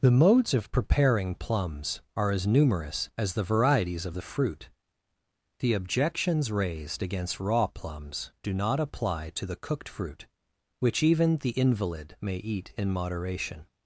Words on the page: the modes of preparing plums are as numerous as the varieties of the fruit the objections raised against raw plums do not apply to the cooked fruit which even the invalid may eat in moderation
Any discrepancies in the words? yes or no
no